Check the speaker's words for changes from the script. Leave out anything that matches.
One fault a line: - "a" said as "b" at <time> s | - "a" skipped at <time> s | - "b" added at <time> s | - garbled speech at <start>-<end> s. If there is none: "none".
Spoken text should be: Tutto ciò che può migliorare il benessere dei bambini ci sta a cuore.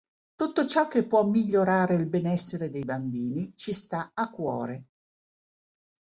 none